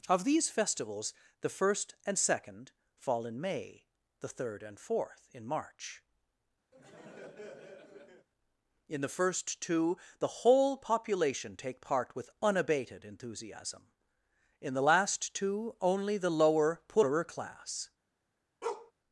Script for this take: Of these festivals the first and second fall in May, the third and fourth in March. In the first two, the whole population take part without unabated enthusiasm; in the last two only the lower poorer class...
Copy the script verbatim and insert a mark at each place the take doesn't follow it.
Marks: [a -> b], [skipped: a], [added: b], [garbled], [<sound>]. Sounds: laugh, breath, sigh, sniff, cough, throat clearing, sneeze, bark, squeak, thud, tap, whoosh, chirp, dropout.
Of these festivals the first and second fall in May, the third and fourth in March. [laugh] In the first two, the whole population take part [without -> with] unabated enthusiasm; in the last two only the lower poorer class... [bark]